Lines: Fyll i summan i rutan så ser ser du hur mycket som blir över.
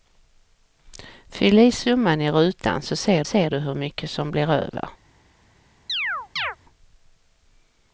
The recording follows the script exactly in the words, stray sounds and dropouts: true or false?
false